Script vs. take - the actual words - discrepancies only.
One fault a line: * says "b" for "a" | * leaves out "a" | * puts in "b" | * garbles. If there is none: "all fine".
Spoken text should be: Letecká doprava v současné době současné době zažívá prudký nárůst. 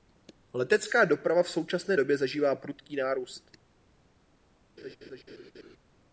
* leaves out "současné době"